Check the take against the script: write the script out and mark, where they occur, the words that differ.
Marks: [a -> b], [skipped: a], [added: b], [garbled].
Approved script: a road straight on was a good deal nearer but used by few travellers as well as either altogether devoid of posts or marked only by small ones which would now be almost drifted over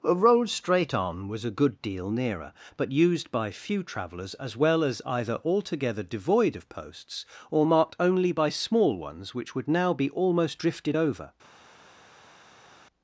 a road straight on was a good deal nearer but used by few travellers as well as either altogether devoid of posts or marked only by small ones which would now be almost drifted over